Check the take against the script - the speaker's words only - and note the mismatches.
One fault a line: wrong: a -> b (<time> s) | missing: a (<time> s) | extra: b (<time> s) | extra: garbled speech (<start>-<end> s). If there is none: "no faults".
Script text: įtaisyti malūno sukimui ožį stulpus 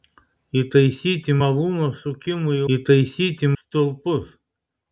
wrong: ožį -> įtaisyti (2.8 s)